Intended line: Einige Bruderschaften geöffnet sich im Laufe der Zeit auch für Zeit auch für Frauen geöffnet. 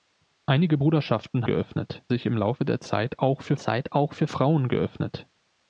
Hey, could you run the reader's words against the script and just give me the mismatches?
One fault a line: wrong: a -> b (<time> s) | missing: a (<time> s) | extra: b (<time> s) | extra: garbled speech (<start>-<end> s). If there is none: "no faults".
no faults